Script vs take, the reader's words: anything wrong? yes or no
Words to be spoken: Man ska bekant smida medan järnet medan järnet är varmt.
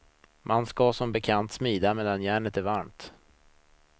yes